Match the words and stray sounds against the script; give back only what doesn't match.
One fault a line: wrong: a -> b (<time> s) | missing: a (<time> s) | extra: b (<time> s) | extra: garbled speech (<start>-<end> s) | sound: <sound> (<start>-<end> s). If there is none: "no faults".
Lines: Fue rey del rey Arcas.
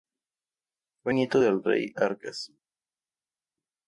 wrong: rey -> nieto (1.1 s)